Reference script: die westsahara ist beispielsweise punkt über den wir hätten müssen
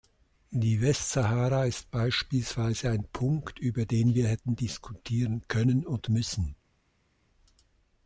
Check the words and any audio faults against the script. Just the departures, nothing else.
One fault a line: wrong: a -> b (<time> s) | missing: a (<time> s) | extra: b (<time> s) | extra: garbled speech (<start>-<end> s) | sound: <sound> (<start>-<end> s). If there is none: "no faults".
extra: ein (2.9 s)
extra: diskutieren können und (4.6 s)